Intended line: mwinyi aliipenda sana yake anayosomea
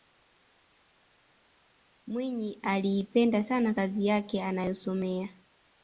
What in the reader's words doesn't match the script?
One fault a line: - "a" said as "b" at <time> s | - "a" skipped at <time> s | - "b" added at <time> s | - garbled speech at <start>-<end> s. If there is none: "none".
- "kazi" added at 3.7 s